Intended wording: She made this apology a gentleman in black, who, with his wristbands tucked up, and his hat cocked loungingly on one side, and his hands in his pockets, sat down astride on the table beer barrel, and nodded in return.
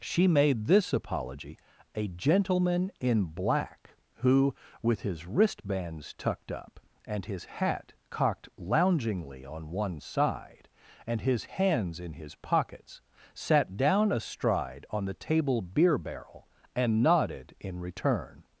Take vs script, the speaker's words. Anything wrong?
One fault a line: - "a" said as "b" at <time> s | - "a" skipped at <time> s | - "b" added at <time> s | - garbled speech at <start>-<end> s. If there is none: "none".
none